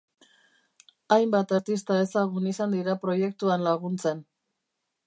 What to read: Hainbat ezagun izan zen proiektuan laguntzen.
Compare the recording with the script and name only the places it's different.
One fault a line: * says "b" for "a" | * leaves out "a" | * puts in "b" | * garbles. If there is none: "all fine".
* puts in "artista"
* says "dira" for "zen"